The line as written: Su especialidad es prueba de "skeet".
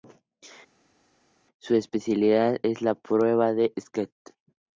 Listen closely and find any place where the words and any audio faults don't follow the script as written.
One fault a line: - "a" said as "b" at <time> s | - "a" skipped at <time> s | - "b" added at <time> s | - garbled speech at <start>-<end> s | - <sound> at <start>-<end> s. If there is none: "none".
- "la" added at 2.8 s